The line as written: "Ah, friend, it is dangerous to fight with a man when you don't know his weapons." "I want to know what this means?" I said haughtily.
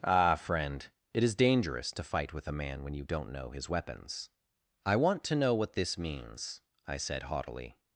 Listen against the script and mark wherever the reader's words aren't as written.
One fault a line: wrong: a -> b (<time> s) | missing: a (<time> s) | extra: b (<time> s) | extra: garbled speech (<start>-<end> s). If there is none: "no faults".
no faults